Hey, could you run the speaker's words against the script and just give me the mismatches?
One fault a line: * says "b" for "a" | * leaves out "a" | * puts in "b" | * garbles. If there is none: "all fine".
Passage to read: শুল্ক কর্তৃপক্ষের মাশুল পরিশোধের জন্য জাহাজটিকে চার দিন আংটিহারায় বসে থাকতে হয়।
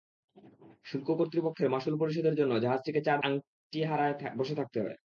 * leaves out "দিন"